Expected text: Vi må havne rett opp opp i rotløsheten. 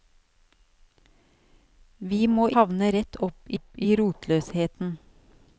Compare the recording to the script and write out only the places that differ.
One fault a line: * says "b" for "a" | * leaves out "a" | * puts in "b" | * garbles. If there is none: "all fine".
all fine